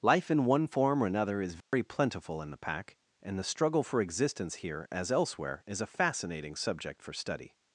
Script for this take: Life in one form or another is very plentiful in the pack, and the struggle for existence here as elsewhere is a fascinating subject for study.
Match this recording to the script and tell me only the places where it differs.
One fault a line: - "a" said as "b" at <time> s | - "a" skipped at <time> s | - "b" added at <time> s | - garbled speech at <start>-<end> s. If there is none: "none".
none